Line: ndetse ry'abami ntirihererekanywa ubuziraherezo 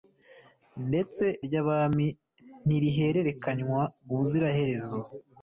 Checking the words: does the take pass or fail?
pass